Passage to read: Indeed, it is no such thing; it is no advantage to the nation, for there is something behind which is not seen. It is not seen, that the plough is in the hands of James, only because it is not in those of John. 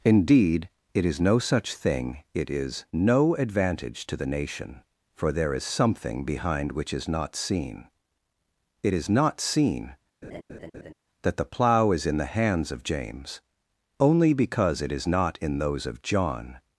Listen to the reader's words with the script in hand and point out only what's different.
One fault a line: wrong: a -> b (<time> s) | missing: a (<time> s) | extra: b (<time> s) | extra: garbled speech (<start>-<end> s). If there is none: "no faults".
no faults